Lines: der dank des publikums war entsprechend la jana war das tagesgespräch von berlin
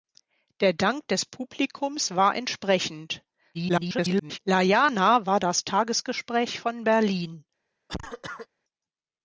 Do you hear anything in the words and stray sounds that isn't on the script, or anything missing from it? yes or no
yes